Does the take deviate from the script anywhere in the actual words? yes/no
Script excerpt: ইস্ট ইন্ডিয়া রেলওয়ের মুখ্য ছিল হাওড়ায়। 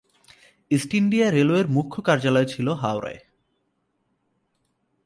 yes